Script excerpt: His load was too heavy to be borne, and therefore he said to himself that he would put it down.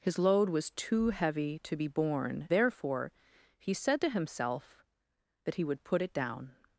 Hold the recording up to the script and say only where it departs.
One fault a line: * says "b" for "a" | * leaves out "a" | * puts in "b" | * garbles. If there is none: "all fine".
* leaves out "and"